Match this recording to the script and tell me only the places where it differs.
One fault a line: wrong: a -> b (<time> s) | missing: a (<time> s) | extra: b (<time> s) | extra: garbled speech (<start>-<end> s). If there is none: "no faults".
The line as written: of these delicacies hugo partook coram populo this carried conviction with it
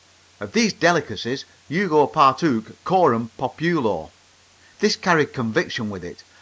no faults